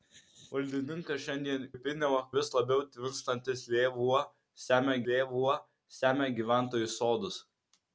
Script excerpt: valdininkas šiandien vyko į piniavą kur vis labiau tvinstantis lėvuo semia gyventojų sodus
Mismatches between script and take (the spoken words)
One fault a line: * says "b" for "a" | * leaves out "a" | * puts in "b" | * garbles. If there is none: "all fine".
* leaves out "vyko"
* leaves out "kur"
* puts in "lėvuo semia"